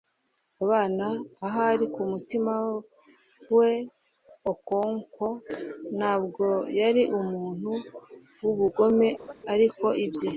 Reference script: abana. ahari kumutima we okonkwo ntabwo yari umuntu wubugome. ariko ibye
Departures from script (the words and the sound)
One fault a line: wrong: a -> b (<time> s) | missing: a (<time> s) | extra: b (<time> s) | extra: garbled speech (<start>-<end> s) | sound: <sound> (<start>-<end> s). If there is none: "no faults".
sound: laugh (9.2-9.3 s)